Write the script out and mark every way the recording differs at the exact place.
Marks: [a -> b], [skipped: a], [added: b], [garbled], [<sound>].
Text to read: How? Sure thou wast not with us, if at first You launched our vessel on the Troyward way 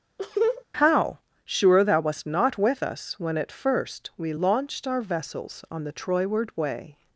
[laugh] How? Sure thou wast not with us, [if -> when] at first [You -> We] launched our [vessel -> vessels] on the Troyward way